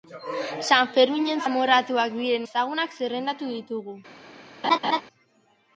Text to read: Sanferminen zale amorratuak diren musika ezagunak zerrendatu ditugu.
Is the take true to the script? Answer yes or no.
no